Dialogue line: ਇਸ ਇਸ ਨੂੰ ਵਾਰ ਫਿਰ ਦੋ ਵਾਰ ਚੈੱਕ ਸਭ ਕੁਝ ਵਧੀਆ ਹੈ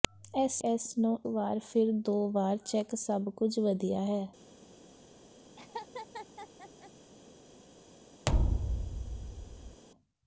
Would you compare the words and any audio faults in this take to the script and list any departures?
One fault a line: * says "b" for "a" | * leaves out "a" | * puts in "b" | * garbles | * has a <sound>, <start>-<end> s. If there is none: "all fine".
* has a laugh, 5.6-6.9 s
* has a thud, 8.3-9.8 s